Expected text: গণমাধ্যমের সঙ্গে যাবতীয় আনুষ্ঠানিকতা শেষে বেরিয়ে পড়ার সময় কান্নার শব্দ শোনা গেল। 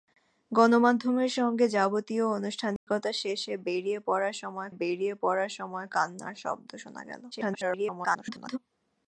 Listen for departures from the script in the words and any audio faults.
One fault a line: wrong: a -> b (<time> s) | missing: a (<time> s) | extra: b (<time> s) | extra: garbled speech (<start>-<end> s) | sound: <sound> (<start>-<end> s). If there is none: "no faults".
sound: dropout (2.8-2.9 s)
extra: বেরিয়ে পড়ার সময় (4.7 s)
extra: garbled speech (7.3-8.6 s)